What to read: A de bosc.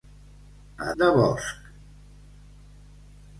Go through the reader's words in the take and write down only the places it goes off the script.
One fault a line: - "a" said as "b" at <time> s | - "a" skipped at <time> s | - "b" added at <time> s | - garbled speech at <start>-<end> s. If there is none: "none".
none